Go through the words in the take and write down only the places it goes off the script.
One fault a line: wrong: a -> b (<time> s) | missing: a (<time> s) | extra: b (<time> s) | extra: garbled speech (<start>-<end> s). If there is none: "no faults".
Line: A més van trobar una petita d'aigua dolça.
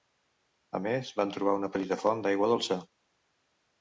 extra: font (2.0 s)